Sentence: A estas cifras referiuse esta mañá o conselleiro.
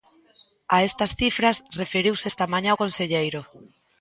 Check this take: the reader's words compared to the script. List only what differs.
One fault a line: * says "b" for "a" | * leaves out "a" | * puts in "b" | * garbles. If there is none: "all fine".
all fine